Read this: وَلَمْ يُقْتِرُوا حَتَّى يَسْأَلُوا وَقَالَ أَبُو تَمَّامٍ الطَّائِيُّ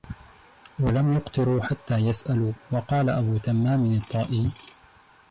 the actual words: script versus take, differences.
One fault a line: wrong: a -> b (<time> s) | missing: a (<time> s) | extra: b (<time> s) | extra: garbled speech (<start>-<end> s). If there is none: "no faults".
no faults